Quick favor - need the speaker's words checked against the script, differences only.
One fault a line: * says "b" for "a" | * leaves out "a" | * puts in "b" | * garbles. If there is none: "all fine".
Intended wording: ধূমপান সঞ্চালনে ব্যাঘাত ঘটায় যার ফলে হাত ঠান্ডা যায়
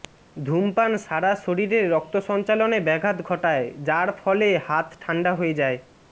* puts in "সারা শরীরে রক্ত"
* puts in "হয়ে"